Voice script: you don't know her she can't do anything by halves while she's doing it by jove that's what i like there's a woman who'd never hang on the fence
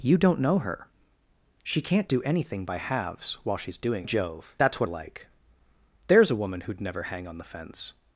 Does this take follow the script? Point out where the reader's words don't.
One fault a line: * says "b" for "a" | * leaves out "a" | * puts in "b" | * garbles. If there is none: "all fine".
* leaves out "it by"
* leaves out "i"